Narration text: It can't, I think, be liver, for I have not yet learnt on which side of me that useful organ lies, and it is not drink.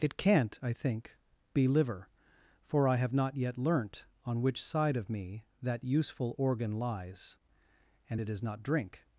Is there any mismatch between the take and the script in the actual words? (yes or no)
no